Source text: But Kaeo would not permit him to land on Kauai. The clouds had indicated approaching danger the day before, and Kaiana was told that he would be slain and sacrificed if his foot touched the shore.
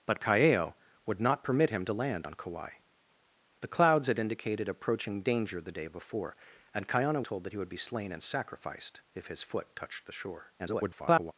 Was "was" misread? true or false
true